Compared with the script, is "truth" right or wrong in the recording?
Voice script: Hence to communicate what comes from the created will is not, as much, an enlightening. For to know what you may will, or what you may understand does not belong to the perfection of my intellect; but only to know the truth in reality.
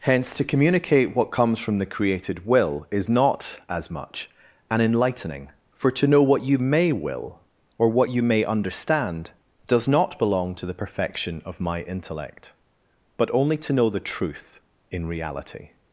right